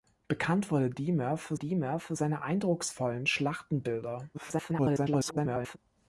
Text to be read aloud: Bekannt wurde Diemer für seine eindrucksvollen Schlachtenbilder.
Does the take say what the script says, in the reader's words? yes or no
no